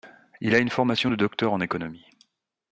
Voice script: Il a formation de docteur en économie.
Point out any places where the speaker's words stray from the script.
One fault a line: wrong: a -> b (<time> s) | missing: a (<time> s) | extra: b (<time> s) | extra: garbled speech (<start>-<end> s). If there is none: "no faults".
extra: une (0.6 s)